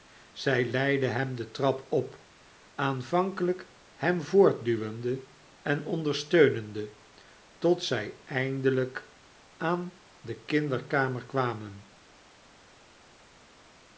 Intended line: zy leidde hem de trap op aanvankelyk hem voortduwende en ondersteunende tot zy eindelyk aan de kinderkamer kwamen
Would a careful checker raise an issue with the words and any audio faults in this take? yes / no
no